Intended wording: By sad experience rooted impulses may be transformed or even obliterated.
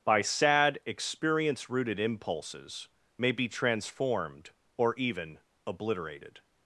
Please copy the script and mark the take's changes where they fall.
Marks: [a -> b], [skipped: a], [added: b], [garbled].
By sad experience rooted impulses may be transformed or even obliterated.